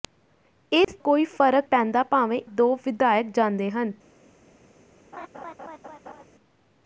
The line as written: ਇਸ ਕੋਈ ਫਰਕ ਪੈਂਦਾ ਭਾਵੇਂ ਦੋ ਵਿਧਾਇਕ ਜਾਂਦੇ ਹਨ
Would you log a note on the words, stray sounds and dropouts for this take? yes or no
yes